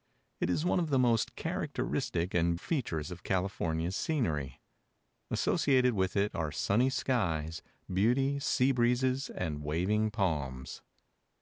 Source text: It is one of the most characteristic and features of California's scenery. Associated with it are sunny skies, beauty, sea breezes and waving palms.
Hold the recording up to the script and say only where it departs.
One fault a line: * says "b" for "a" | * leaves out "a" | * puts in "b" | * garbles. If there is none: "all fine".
all fine